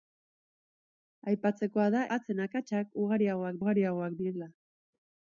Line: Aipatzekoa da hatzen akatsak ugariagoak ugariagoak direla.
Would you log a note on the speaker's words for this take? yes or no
no